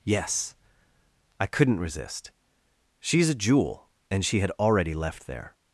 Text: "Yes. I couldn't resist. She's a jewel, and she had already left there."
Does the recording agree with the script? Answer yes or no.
yes